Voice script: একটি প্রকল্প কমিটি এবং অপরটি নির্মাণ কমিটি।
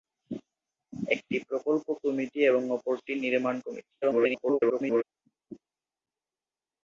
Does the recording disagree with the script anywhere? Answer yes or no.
yes